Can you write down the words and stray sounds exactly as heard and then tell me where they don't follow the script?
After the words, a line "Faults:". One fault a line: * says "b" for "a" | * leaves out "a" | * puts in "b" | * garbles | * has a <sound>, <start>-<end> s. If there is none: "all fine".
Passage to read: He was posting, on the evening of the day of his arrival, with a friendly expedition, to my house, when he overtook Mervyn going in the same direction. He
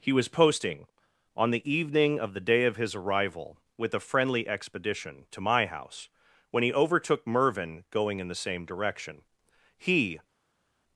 He was posting, on the evening of the day of his arrival, with a friendly expedition, to my house, when he overtook Mervyn going in the same direction. He
Faults:
all fine